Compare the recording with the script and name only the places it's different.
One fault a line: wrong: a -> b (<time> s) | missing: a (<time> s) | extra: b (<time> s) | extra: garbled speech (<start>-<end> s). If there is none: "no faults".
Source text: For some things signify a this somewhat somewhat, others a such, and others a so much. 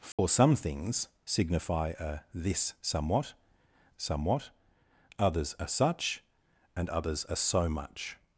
no faults